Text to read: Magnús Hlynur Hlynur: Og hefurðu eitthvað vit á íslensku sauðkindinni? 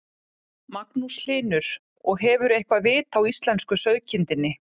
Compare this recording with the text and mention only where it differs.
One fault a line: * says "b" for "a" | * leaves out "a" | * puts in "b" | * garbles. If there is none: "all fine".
* leaves out "Hlynur"